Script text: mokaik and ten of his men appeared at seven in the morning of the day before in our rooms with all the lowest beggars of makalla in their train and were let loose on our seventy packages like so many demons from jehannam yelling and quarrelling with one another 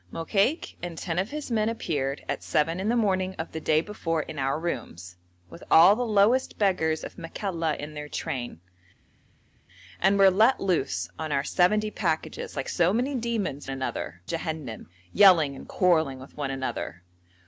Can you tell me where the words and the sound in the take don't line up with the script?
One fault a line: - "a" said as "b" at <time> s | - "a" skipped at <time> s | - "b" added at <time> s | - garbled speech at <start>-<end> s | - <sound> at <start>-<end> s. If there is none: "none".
- "from" said as "another" at 13.7 s